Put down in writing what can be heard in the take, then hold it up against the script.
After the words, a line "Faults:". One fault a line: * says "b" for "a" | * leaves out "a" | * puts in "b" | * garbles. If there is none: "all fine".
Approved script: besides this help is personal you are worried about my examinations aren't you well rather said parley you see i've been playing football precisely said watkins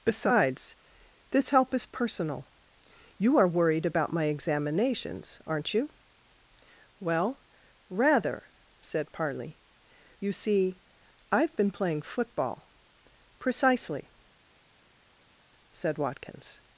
besides this help is personal you are worried about my examinations aren't you well rather said parley you see i've been playing football precisely said watkins
Faults:
all fine